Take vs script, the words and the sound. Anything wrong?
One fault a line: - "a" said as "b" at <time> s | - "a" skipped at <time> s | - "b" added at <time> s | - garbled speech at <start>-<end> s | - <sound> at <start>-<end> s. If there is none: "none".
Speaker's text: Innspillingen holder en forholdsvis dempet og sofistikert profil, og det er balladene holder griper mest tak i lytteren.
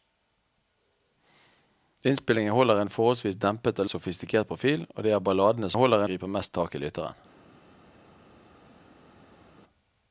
none